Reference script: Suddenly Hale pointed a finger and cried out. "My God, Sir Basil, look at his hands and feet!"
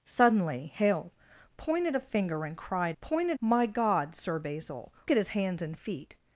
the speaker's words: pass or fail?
fail